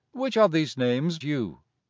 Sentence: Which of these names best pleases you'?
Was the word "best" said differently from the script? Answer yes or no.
yes